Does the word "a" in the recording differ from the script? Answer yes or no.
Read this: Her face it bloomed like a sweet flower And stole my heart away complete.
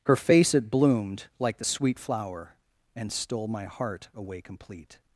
yes